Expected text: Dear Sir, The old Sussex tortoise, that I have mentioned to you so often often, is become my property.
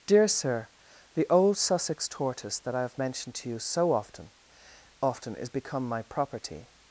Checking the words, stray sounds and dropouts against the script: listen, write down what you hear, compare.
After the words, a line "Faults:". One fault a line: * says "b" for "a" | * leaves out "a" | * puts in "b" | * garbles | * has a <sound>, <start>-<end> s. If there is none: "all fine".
Dear Sir, The old Sussex tortoise, that I have mentioned to you so often often, is become my property.
Faults:
all fine